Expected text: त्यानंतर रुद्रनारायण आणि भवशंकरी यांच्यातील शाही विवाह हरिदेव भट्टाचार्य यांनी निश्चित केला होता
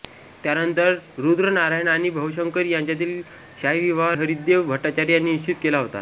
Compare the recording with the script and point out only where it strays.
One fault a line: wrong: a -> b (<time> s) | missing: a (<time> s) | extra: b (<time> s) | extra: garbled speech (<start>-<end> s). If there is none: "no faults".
no faults